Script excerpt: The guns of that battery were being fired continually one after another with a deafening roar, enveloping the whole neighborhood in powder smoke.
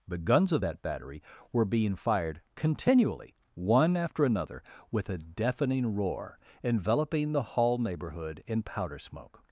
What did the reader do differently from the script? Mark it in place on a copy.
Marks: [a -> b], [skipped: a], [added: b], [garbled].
The guns of that battery were being fired continually one after another with a deafening roar, enveloping the [whole -> hall] neighborhood in powder smoke.